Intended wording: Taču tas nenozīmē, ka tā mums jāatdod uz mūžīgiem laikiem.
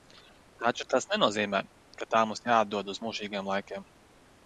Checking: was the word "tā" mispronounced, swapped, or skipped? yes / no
no